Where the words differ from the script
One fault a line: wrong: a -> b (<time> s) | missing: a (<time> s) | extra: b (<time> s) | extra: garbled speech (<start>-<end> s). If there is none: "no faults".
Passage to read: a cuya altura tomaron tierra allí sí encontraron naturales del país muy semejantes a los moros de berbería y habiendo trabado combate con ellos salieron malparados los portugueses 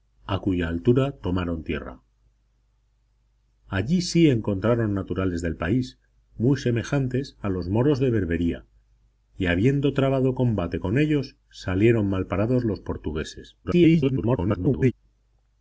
extra: garbled speech (13.6-14.9 s)